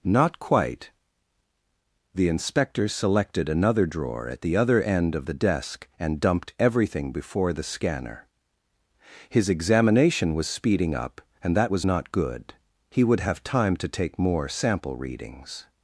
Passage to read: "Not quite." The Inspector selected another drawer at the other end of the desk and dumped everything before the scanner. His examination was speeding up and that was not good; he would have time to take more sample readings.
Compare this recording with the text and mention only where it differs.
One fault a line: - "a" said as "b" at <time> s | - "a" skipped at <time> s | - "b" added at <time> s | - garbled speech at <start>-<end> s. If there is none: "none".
none